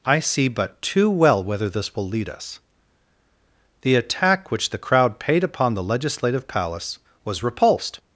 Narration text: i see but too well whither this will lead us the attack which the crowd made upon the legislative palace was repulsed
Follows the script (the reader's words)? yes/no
no